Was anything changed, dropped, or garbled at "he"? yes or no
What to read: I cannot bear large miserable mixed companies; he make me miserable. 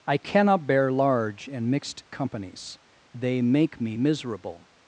yes